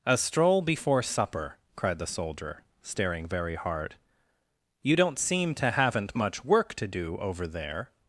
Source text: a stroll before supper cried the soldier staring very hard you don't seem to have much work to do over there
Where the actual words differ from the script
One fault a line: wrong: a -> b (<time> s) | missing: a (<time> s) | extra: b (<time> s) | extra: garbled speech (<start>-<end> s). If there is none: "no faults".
wrong: have -> haven't (5.7 s)